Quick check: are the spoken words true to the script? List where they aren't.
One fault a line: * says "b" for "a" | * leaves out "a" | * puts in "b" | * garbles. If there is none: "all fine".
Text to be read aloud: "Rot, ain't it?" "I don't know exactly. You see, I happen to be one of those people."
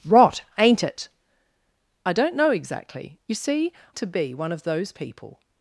* leaves out "I happen"